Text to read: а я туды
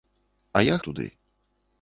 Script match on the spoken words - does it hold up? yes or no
yes